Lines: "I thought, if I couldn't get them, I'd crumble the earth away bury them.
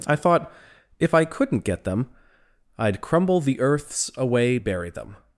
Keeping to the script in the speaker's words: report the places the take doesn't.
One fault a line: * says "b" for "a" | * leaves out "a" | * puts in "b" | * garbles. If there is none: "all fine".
* says "earths" for "earth"